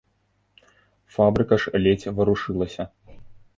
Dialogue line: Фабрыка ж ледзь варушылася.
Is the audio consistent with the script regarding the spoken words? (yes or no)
yes